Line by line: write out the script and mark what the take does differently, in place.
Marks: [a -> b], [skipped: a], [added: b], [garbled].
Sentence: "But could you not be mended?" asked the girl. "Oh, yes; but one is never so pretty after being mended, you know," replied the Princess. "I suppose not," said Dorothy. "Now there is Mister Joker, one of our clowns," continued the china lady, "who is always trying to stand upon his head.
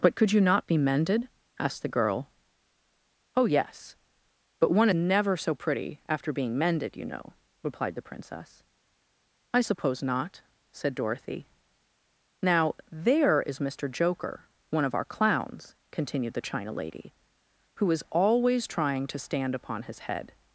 "But could you not be mended?" asked the girl. "Oh, yes; but one [skipped: is] never so pretty after being mended, you know," replied the Princess. "I suppose not," said Dorothy. "Now there is Mister Joker, one of our clowns," continued the china lady, "who is always trying to stand upon his head.